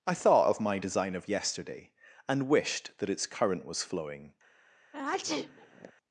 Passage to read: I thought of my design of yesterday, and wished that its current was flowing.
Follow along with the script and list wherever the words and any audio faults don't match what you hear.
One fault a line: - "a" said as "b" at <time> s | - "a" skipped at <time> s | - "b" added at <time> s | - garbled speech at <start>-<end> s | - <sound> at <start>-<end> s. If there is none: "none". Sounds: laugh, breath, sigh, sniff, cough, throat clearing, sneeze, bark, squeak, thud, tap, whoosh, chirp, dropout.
- sneeze at 4.9-5.9 s